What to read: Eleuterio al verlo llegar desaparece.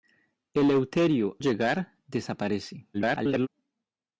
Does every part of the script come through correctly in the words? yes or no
no